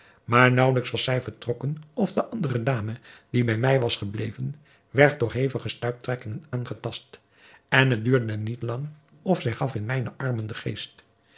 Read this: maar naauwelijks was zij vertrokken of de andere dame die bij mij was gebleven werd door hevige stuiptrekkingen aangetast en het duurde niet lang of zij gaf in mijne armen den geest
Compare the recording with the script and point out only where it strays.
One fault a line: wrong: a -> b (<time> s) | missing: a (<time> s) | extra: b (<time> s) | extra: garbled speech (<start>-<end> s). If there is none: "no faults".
no faults